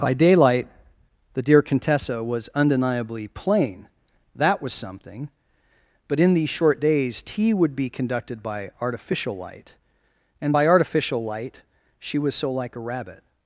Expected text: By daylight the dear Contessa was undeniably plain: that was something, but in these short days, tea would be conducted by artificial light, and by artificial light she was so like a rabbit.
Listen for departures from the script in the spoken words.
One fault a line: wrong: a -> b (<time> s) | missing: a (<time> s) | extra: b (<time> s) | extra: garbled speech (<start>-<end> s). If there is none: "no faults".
no faults